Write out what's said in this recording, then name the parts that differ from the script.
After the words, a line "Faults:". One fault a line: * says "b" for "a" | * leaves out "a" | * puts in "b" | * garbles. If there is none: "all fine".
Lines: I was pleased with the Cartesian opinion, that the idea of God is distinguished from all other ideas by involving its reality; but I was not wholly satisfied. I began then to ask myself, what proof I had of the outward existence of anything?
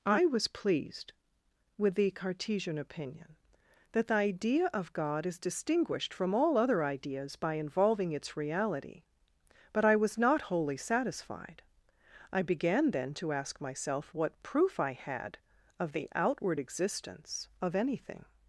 I was pleased with the Cartesian opinion, that the idea of God is distinguished from all other ideas by involving its reality; but I was not wholly satisfied. I began then to ask myself, what proof I had of the outward existence of anything?
Faults:
all fine